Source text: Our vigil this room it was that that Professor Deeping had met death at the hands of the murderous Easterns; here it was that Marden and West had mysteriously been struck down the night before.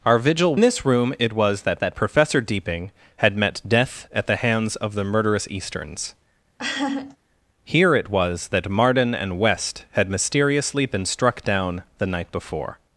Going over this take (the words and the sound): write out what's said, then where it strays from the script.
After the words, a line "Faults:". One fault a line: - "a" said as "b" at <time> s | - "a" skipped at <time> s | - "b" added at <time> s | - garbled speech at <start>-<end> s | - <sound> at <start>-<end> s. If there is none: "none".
Our vigil this room it was that that Professor Deeping had met death at the hands of the murderous Easterns; here it was that Marden and West had mysteriously been struck down the night before.
Faults:
- laugh at 6.6-7.2 s